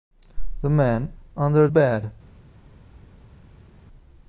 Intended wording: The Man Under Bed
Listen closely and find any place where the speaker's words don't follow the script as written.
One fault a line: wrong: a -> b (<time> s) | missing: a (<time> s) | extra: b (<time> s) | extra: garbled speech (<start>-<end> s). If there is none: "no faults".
no faults